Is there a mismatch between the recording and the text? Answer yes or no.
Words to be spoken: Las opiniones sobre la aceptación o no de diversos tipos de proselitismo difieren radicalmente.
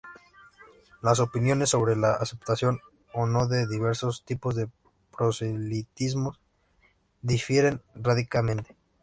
no